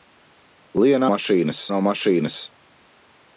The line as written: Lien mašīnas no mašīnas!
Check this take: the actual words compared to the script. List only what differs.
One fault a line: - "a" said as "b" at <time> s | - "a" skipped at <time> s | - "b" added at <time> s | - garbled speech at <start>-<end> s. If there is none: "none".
none